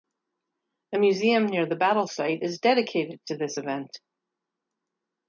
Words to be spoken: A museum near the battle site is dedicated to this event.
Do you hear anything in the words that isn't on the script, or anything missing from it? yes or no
no